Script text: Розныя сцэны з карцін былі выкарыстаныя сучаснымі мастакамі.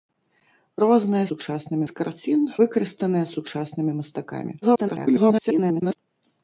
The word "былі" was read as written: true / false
false